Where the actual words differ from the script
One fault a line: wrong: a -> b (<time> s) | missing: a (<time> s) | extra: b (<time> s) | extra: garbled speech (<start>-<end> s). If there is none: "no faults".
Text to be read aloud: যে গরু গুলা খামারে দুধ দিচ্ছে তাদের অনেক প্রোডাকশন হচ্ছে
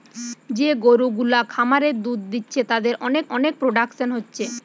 extra: অনেক (3.3 s)